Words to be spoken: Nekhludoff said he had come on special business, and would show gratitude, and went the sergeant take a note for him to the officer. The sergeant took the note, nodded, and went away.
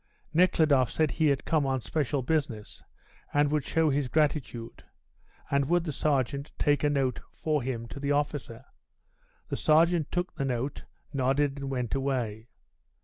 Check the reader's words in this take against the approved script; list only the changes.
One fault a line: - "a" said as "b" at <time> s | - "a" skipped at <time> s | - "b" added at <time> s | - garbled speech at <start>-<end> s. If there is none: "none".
- "his" added at 3.9 s
- "went" said as "would" at 5.7 s